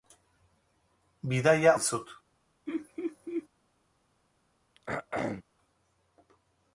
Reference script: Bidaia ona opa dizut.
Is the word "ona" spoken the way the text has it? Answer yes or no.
no